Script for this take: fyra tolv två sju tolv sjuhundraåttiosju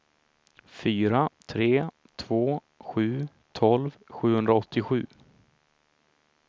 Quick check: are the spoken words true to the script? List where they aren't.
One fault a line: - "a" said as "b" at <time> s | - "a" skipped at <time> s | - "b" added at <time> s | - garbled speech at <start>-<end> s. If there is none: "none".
- "tolv" said as "tre" at 1.4 s